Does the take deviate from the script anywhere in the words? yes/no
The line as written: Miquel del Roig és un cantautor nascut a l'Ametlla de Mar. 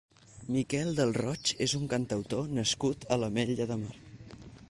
no